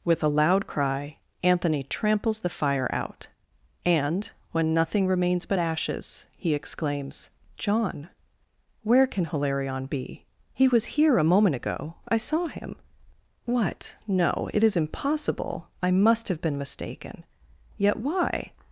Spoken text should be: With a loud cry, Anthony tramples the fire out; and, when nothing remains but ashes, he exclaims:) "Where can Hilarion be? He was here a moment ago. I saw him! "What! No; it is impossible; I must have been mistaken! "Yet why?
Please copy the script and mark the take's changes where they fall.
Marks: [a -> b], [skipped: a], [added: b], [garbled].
With a loud cry, Anthony tramples the fire out; and, when nothing remains but ashes, he exclaims:) [added: john] "Where can Hilarion be? He was here a moment ago. I saw him! "What! No; it is impossible; I must have been mistaken! "Yet why?